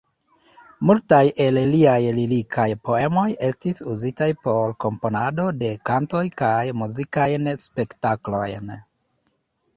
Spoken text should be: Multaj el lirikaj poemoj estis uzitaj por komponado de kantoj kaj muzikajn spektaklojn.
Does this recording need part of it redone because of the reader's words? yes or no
yes